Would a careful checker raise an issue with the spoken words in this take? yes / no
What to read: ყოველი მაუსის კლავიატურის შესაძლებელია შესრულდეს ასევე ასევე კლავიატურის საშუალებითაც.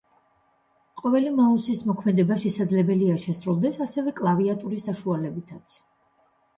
yes